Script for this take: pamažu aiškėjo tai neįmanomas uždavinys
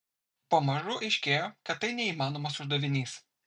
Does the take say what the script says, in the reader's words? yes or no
no